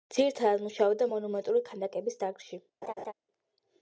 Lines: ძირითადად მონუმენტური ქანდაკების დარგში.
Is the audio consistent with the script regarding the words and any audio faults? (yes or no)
no